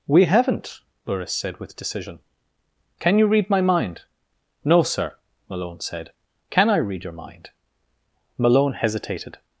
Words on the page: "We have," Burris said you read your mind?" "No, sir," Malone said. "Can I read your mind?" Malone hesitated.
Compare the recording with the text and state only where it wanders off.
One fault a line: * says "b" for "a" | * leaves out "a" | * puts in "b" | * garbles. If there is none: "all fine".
* says "haven't" for "have"
* puts in "with decision Can"
* says "my" for "your"